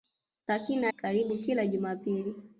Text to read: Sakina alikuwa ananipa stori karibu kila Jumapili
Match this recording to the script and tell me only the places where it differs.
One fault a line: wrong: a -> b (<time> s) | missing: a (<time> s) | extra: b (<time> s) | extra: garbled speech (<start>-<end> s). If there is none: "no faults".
missing: alikuwa ananipa stori (0.9 s)